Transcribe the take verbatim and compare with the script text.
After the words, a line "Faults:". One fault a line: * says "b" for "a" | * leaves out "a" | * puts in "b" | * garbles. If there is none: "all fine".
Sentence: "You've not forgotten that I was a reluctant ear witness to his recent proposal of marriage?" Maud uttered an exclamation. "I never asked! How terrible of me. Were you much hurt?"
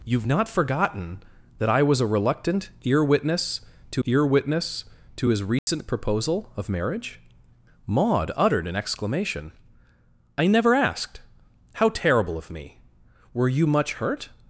"You've not forgotten that I was a reluctant ear witness to ear witness to his recent proposal of marriage?" Maud uttered an exclamation. "I never asked! How terrible of me. Were you much hurt?"
Faults:
* puts in "ear witness to"